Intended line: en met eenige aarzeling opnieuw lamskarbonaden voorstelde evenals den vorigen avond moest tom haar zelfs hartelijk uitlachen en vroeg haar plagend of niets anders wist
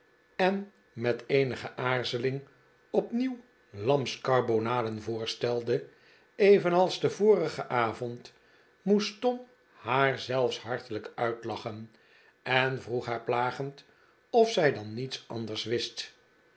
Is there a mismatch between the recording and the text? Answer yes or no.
yes